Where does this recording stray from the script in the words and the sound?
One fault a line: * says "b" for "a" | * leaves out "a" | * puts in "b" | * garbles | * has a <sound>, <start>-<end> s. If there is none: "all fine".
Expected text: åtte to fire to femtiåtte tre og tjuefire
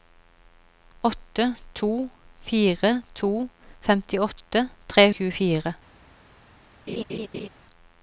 * has a laugh, 6.9-7.5 s